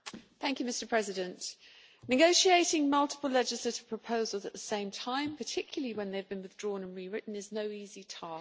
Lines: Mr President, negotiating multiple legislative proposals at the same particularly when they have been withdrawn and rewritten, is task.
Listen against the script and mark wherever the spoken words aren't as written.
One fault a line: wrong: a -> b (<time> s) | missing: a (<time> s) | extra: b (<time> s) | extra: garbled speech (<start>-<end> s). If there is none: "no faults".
extra: time (4.9 s)
extra: no easy (7.5 s)